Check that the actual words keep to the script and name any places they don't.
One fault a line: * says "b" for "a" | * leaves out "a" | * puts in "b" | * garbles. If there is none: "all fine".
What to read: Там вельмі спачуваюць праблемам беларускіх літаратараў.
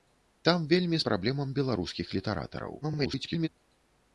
* leaves out "спачуваюць"
* garbles